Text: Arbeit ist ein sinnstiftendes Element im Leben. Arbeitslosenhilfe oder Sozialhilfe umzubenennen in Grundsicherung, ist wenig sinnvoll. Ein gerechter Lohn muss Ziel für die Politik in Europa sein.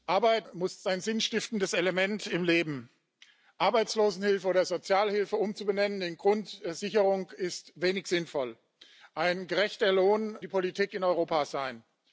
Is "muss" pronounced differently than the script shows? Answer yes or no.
yes